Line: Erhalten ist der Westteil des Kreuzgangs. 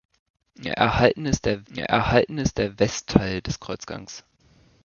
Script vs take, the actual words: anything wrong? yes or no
yes